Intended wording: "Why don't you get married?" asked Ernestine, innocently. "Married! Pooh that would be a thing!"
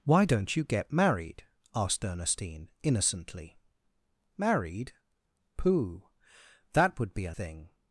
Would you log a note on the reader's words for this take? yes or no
no